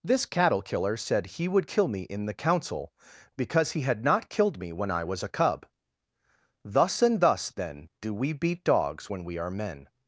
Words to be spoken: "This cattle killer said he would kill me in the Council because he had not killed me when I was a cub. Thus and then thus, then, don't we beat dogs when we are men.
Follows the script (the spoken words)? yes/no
no